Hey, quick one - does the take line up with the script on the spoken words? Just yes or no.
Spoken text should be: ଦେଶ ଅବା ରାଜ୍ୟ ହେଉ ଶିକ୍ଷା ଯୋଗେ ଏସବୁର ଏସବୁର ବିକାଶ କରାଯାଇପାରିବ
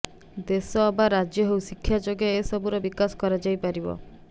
no